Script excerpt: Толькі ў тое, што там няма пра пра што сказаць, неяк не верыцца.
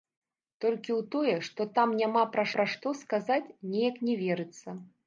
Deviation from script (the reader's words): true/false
false